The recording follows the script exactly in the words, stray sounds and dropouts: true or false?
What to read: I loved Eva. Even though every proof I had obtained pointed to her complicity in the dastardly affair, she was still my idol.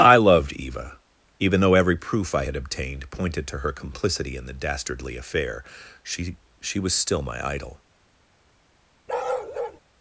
false